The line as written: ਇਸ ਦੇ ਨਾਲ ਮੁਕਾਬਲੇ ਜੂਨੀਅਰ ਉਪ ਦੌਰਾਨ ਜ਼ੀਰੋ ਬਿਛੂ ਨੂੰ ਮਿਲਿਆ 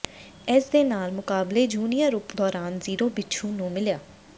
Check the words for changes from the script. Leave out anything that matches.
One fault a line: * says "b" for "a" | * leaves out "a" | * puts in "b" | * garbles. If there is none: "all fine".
all fine